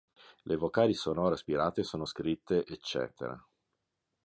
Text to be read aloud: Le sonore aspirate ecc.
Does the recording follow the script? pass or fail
fail